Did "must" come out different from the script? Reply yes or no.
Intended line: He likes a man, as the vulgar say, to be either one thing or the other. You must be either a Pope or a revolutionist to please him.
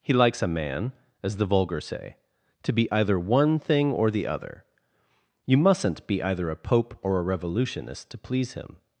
yes